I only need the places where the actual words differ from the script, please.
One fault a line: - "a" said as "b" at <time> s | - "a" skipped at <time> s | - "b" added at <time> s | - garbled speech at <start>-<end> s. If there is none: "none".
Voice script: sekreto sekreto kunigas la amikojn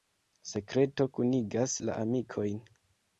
- "sekreto" skipped at 1.1 s